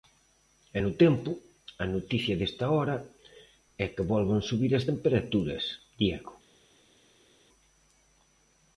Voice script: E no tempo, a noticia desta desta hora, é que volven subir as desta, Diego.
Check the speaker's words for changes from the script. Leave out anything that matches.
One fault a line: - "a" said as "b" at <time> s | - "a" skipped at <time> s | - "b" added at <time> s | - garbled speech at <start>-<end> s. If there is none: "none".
- "desta" skipped at 2.7 s
- "desta" said as "temperaturas" at 4.9 s